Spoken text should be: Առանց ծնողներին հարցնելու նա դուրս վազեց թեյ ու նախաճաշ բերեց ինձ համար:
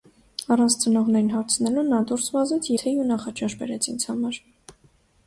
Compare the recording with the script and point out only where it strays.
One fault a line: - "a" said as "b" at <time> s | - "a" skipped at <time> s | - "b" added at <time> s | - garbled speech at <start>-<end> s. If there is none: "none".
none